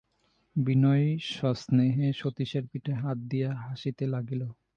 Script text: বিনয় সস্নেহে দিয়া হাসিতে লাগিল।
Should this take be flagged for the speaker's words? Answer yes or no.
yes